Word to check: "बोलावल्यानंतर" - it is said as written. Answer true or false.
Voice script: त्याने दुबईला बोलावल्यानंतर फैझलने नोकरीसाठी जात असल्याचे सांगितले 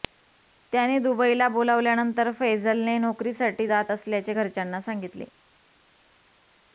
true